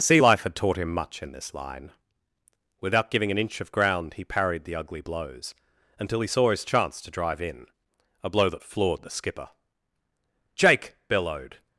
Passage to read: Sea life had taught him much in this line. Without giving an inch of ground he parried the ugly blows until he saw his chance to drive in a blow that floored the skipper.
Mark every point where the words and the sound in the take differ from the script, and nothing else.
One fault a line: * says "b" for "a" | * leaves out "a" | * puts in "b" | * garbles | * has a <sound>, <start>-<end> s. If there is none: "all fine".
* puts in "Jake bellowed"